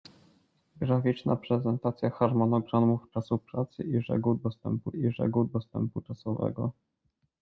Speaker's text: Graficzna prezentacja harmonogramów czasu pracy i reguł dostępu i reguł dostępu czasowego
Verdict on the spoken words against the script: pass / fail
pass